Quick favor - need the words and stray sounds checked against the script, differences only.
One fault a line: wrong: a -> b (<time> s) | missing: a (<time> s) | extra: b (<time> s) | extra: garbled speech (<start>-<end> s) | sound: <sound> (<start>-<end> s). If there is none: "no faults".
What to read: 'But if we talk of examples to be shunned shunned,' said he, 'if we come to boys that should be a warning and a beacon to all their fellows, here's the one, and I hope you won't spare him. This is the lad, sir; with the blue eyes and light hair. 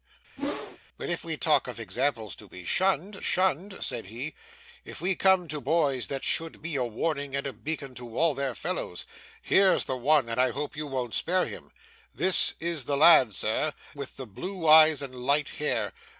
sound: whoosh (0.4-0.8 s)